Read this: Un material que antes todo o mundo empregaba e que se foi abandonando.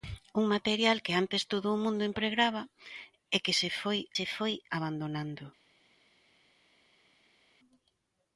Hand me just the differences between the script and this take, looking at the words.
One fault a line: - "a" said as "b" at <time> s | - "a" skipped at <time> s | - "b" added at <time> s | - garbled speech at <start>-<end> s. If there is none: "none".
- "se foi" added at 4.2 s